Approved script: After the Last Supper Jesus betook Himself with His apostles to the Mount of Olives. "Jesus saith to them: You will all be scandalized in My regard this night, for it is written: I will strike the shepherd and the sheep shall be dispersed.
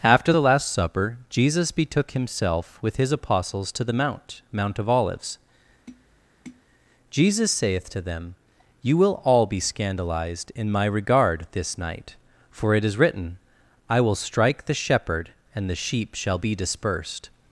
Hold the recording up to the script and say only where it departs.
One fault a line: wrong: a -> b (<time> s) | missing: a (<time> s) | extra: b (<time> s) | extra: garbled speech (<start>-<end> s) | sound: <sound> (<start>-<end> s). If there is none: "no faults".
extra: Mount (4.5 s)
sound: tap (5.9-6.6 s)